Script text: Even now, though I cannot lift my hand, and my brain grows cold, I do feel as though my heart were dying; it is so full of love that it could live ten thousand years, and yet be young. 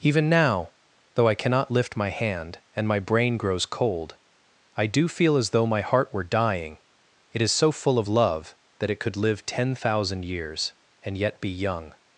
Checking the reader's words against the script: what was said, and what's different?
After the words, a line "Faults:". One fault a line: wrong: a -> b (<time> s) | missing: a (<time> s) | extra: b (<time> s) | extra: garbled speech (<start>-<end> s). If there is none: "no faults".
Even now, though I cannot lift my hand, and my brain grows cold, I do feel as though my heart were dying; it is so full of love that it could live ten thousand years, and yet be young.
Faults:
no faults